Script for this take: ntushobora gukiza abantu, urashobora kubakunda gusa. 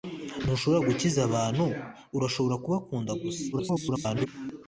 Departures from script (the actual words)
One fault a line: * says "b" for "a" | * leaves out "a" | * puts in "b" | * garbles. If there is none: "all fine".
* garbles